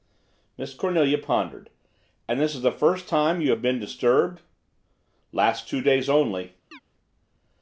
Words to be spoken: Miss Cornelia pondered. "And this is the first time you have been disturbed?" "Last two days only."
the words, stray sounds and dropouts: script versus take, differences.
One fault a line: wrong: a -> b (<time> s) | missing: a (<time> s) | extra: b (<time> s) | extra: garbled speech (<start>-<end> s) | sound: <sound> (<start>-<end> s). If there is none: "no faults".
sound: chirp (6.7-6.8 s)